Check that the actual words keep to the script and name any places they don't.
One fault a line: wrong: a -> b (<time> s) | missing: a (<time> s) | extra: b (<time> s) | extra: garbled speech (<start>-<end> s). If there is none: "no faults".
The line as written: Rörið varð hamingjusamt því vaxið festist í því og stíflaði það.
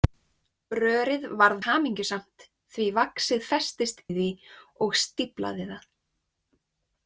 no faults